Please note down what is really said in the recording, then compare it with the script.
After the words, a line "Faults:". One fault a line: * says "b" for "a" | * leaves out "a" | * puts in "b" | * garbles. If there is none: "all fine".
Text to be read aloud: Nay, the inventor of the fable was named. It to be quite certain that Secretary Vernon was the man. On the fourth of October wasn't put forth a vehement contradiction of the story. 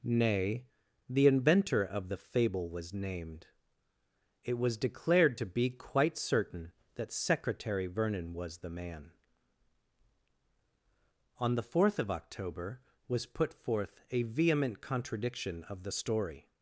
Nay, the inventor of the fable was named. It was declared to be quite certain that Secretary Vernon was the man. On the fourth of October was put forth a vehement contradiction of the story.
Faults:
* puts in "was declared"
* says "was" for "wasn't"